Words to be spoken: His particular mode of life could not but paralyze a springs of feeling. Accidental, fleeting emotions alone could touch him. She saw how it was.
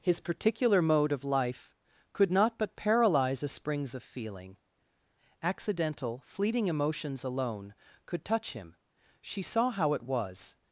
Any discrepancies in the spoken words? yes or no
no